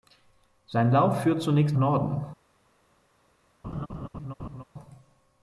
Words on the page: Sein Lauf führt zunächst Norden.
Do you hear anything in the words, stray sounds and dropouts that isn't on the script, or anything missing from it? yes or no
yes